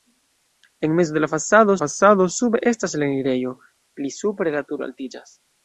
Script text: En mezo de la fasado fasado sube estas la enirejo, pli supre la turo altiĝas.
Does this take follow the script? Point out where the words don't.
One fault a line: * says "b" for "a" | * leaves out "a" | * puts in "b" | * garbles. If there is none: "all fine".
all fine